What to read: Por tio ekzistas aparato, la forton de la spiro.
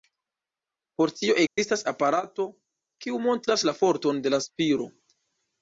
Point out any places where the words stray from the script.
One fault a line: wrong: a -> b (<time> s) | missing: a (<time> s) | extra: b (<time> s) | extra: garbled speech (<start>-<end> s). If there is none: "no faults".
extra: kiu montras (3.0 s)